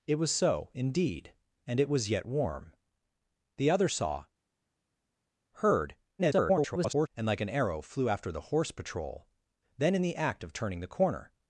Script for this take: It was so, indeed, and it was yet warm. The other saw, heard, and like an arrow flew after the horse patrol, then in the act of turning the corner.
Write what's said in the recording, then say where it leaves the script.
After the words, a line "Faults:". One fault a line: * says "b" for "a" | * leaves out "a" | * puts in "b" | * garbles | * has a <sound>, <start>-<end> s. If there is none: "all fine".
It was so, indeed, and it was yet warm. The other saw, heard, [garbled] and like an arrow flew after the horse patrol, then in the act of turning the corner.
Faults:
* garbles